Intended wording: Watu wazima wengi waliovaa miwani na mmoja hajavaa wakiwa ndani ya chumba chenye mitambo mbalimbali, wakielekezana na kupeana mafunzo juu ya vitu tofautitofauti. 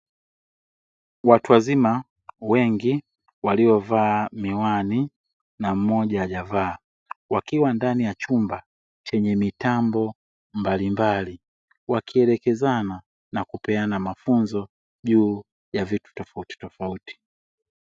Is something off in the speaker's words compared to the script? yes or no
no